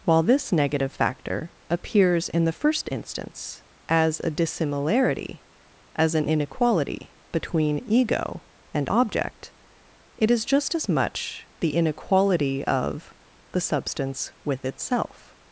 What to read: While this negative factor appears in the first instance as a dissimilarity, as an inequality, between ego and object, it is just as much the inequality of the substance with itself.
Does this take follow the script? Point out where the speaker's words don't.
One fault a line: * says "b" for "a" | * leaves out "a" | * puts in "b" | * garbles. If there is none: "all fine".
all fine